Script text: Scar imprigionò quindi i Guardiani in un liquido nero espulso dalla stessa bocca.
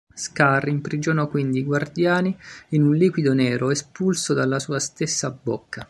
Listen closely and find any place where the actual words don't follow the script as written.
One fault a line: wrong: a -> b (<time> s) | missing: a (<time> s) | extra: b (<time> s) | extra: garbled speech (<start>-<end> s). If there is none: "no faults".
extra: sua (4.6 s)